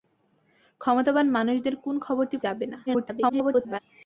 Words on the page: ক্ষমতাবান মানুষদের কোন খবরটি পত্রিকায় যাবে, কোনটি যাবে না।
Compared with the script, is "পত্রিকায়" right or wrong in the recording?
wrong